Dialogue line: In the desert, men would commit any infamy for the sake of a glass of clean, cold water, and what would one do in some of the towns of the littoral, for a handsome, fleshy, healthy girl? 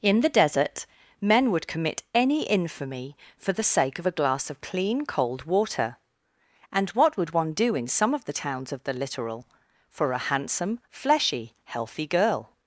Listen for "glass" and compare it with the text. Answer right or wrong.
right